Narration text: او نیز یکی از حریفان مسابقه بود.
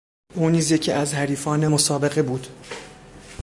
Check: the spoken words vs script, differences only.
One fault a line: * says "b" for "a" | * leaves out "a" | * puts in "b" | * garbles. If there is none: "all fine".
all fine